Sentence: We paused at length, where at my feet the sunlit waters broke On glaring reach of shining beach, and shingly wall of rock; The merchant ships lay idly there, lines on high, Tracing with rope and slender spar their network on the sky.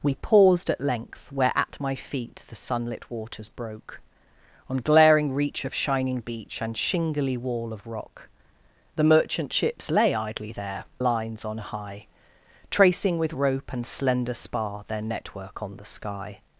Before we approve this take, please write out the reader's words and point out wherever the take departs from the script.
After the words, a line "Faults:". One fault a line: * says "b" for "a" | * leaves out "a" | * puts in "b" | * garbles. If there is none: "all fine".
We paused at length, where at my feet the sunlit waters broke On glaring reach of shining beach, and shingly wall of rock; The merchant ships lay idly there, lines on high, Tracing with rope and slender spar their network on the sky.
Faults:
all fine